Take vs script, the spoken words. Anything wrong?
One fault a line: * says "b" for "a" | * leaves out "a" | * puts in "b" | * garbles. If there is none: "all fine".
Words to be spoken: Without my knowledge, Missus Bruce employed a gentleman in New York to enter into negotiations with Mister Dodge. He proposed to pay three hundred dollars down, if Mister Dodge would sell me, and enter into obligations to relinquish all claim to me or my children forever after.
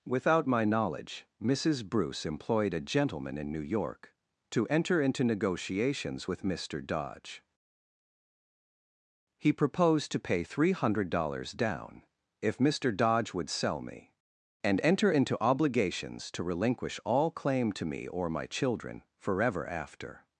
all fine